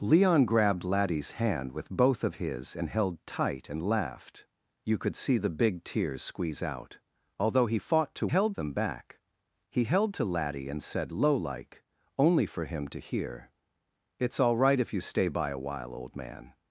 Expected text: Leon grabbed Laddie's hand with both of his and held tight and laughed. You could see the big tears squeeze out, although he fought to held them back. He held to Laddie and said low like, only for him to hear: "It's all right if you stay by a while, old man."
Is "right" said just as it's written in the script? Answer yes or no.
yes